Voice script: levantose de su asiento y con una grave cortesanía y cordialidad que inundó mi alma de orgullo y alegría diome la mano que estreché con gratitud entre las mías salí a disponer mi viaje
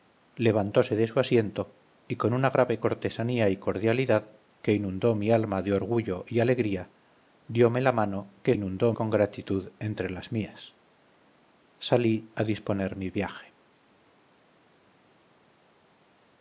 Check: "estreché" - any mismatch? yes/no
yes